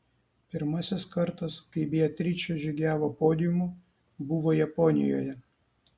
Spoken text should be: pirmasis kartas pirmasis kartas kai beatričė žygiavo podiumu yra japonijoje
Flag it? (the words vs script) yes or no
yes